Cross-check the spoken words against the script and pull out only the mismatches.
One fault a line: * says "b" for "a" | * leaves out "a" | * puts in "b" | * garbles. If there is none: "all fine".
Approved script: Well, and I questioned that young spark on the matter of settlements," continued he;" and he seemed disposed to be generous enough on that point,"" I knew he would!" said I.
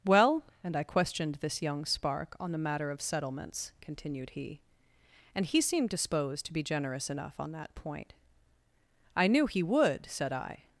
* says "this" for "that"